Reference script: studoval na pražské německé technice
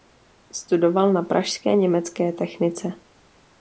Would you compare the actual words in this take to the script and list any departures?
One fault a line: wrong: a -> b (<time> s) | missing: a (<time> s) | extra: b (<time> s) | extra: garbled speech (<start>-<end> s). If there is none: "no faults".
no faults